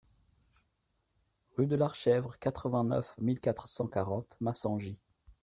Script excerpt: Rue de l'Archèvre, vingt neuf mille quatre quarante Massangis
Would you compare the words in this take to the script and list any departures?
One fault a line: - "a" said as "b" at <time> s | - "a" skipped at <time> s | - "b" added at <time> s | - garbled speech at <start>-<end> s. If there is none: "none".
- "quatre" added at 2.4 s
- "cent" added at 3.7 s